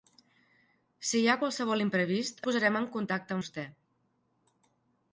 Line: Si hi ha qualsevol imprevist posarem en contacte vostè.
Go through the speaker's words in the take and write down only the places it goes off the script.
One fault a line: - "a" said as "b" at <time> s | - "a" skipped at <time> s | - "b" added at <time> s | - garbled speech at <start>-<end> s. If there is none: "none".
none